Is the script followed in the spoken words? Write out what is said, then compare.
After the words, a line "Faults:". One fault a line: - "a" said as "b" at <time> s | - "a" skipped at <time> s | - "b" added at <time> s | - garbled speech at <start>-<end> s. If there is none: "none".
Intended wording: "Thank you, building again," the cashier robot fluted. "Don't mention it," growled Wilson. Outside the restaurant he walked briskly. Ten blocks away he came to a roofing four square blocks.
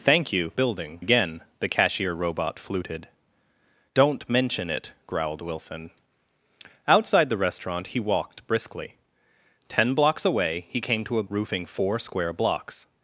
"Thank you, building again," the cashier robot fluted. "Don't mention it," growled Wilson. Outside the restaurant he walked briskly. Ten blocks away he came to a roofing four square blocks.
Faults:
none